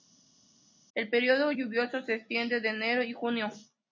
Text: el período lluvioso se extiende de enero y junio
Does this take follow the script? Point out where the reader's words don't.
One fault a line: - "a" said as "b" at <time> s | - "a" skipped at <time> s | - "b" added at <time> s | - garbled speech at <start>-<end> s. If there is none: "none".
none